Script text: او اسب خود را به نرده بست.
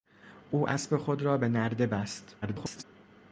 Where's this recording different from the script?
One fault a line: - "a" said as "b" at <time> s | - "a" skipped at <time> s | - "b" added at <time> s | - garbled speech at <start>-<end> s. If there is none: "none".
- garbled speech at 2.4-2.8 s